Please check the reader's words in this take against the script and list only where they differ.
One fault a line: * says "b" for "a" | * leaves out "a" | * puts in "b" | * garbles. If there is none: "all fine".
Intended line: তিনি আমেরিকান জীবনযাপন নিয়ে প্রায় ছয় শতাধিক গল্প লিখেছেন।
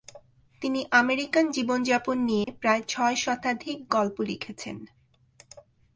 all fine